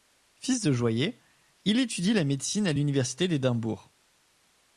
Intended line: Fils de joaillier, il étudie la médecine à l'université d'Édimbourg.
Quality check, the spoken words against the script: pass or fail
pass